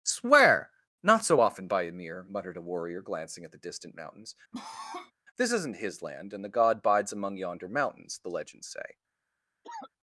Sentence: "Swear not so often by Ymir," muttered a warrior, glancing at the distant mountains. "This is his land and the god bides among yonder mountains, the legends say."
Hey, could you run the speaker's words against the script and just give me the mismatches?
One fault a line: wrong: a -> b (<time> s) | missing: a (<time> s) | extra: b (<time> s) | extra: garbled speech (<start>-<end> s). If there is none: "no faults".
wrong: is -> isn't (5.5 s)